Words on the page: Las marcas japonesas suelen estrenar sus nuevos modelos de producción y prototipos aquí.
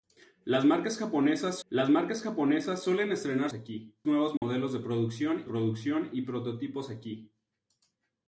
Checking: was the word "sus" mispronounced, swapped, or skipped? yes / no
yes